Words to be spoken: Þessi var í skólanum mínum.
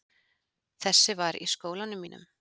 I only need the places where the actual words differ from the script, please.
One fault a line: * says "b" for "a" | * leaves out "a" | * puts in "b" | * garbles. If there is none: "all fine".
all fine